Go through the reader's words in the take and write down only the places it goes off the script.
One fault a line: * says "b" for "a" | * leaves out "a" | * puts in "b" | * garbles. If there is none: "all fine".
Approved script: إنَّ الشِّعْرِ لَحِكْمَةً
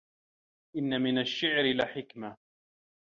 * puts in "مِنْ"